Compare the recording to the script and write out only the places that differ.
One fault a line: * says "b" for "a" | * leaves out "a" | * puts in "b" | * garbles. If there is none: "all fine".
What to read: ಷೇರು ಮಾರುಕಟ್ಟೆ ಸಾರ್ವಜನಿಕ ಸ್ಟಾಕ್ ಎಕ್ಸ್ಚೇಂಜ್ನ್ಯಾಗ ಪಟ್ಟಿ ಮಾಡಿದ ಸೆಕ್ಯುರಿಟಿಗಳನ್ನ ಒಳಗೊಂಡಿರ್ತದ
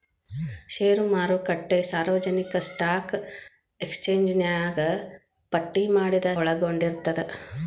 * leaves out "ಸೆಕ್ಯುರಿಟಿಗಳನ್ನ"